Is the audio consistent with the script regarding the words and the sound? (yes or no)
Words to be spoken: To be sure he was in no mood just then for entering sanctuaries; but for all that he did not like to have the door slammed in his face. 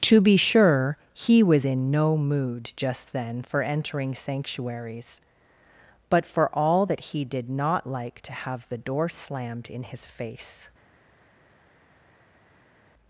yes